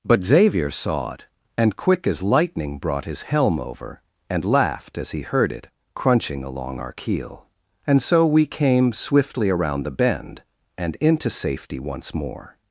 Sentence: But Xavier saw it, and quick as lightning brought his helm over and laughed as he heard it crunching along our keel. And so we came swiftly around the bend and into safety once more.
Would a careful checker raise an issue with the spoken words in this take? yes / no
no